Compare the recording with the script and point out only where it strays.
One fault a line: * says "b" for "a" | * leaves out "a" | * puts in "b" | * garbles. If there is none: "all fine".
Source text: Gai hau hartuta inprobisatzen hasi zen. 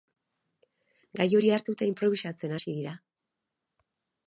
* says "hori" for "hau"
* says "dira" for "zen"